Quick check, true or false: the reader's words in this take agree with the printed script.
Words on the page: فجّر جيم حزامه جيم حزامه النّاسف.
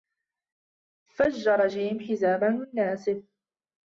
false